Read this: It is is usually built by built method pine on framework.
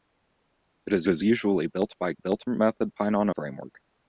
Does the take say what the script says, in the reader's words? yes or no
yes